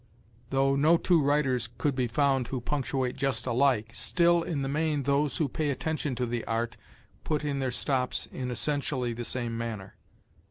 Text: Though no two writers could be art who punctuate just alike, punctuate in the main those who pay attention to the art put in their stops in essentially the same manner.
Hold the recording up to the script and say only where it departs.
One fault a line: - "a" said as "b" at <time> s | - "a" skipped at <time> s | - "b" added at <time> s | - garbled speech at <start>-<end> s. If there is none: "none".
- "art" said as "found" at 2.1 s
- "punctuate" said as "still" at 3.9 s